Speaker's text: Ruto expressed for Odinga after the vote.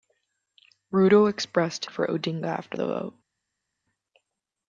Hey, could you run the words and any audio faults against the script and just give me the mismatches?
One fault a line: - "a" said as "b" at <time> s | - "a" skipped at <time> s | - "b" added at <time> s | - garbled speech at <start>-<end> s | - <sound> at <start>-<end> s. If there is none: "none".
none